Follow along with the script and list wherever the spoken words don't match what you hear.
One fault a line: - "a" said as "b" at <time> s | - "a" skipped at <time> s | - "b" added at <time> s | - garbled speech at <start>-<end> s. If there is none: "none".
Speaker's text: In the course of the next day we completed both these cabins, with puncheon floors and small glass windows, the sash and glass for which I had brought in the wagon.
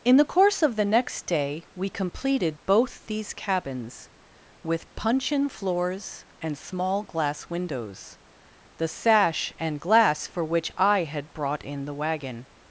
none